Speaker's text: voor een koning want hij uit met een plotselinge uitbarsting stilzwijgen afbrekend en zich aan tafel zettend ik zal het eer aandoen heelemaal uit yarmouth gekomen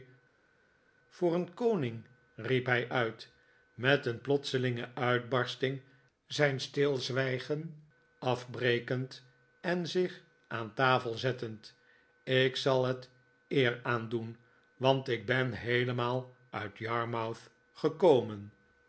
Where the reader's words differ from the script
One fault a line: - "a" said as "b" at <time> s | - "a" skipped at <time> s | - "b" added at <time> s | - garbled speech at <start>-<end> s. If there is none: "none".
- "want" said as "riep" at 2.3 s
- "zijn" added at 6.3 s
- "want ik ben" added at 14.8 s